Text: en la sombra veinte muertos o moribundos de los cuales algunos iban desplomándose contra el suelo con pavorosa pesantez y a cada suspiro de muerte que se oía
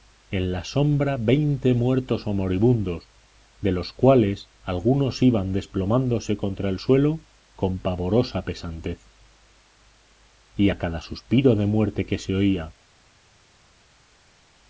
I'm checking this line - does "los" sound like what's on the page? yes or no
yes